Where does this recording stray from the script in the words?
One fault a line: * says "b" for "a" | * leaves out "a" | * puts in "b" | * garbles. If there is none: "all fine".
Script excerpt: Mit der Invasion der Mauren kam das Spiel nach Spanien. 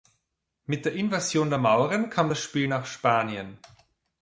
all fine